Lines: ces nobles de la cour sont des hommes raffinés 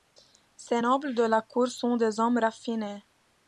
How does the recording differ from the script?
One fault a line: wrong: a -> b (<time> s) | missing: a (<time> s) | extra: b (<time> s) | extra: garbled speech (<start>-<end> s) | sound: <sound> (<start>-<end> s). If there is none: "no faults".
no faults